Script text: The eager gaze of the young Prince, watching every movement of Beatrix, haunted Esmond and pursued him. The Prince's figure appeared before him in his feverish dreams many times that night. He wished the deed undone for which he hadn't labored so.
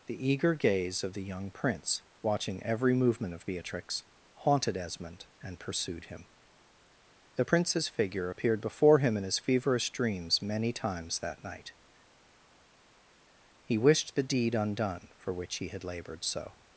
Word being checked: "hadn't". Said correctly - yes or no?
no